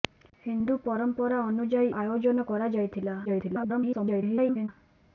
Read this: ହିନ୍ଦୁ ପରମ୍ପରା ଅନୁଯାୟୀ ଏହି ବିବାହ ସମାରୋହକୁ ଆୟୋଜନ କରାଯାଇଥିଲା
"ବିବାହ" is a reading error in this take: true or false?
true